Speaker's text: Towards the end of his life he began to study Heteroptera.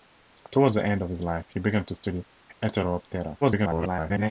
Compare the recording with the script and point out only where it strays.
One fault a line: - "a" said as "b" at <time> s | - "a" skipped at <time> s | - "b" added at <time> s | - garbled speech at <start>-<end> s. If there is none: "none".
- garbled speech at 3.4-4.3 s